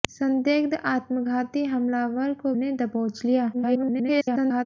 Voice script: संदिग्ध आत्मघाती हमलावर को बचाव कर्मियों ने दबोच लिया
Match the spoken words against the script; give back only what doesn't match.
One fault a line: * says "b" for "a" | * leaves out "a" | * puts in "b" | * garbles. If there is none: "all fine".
* leaves out "बचाव कर्मियों"
* garbles